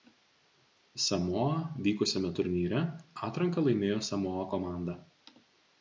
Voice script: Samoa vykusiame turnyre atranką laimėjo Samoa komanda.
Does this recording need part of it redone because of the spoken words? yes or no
no